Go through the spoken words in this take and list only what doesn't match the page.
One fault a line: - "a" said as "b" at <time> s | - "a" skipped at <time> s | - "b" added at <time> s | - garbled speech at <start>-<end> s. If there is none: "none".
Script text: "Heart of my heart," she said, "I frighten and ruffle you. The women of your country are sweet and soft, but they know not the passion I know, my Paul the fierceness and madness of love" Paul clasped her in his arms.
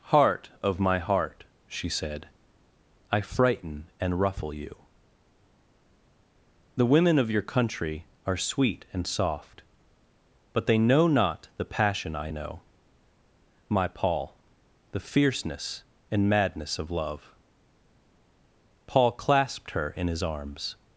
none